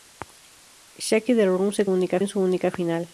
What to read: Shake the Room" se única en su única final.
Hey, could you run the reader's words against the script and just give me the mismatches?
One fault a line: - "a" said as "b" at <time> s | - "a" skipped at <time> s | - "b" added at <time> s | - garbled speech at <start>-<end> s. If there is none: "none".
none